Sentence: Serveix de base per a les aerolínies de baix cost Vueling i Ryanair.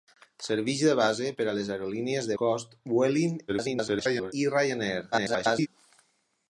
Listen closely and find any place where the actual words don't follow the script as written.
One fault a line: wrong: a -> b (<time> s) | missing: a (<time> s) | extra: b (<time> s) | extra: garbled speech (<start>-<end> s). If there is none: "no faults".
missing: baix (2.4 s)
extra: garbled speech (3.5-4.3 s)
extra: garbled speech (5.1-5.7 s)